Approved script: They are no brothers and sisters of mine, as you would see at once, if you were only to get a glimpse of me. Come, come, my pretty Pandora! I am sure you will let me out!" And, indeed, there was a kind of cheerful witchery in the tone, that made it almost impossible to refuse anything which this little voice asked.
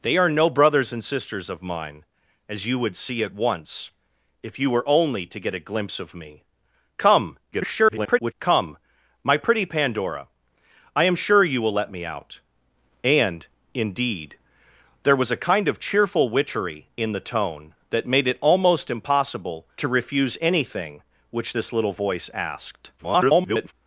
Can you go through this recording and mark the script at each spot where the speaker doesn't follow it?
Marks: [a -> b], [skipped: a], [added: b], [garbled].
They are no brothers and sisters of mine, as you would see at once, if you were only to get a glimpse of me. Come, [garbled] come, my pretty Pandora! I am sure you will let me out!" And, indeed, there was a kind of cheerful witchery in the tone, that made it almost impossible to refuse anything which this little voice asked. [garbled]